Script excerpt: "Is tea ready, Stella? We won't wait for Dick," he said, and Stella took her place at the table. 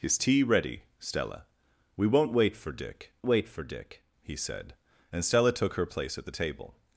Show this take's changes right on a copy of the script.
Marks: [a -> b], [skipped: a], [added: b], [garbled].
"Is tea ready, Stella? We won't wait for Dick," [added: wait for Dick] he said, and Stella took her place at the table.